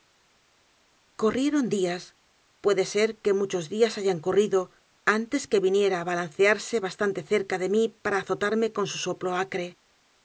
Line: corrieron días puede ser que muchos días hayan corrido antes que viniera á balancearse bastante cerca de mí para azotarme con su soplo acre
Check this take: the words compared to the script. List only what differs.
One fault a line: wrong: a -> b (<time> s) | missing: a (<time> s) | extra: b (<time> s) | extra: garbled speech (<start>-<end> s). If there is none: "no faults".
no faults